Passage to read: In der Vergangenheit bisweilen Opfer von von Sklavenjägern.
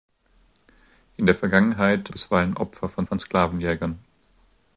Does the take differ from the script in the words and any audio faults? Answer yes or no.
no